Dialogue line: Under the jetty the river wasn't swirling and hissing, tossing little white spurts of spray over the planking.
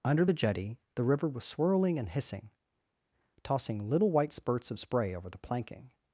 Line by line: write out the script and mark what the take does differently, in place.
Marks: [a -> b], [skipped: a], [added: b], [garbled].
Under the jetty the river [wasn't -> was] swirling and hissing, tossing little white spurts of spray over the planking.